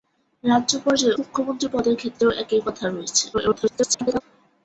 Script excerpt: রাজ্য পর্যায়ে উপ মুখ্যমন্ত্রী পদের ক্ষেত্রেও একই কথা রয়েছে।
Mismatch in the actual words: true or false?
true